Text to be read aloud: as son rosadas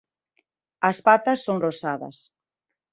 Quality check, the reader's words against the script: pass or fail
fail